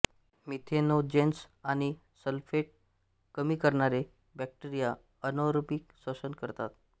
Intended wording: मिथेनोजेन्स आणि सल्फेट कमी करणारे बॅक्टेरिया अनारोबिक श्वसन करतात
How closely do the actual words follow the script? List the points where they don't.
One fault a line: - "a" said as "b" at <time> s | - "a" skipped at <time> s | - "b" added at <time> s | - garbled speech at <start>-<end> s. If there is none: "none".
none